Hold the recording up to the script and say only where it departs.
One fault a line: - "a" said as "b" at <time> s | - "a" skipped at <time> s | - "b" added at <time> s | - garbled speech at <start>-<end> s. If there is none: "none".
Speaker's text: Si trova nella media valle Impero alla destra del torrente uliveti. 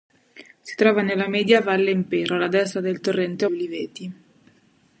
none